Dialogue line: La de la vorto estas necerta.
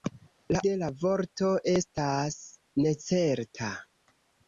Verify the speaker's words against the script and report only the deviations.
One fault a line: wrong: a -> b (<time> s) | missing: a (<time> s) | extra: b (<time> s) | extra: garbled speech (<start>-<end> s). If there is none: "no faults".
no faults